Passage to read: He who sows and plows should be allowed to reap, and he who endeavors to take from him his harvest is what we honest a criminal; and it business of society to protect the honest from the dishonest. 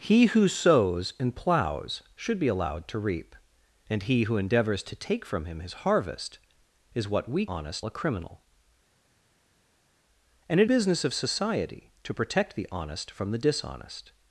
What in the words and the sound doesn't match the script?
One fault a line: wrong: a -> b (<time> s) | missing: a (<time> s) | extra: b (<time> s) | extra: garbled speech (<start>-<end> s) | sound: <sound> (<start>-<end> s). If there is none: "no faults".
no faults